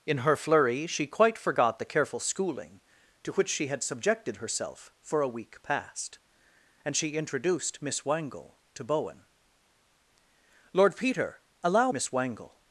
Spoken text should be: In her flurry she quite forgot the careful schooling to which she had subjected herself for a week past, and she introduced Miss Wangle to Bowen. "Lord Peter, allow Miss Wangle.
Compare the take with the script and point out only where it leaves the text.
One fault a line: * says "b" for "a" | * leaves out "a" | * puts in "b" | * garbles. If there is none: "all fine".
all fine